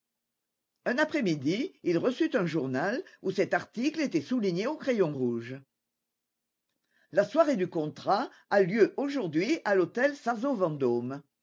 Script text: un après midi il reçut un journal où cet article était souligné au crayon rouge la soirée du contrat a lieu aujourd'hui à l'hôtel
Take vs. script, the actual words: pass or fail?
pass